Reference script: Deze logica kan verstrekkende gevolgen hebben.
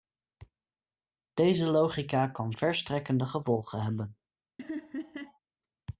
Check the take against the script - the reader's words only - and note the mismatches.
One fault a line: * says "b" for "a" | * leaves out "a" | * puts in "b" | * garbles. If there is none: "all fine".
all fine